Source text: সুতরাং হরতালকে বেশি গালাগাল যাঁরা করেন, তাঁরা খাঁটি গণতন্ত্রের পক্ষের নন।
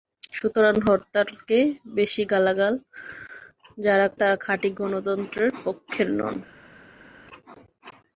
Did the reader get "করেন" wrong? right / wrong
wrong